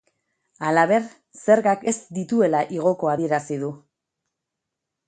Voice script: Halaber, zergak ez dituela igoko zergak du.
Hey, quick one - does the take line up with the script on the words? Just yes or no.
no